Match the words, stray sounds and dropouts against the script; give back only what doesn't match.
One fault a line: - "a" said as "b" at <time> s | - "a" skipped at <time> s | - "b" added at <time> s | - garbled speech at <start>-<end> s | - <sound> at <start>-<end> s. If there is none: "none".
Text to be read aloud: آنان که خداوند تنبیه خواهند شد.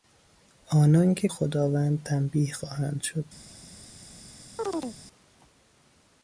- chirp at 4.6-5.0 s